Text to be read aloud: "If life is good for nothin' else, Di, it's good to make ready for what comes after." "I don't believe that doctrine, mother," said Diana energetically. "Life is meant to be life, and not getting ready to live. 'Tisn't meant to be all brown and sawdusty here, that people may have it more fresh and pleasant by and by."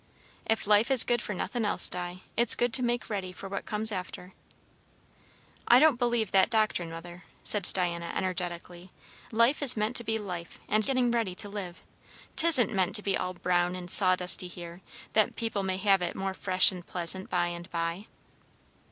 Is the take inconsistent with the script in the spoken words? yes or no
yes